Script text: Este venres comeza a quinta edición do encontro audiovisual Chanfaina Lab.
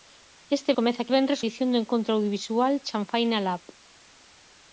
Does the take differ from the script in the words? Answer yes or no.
yes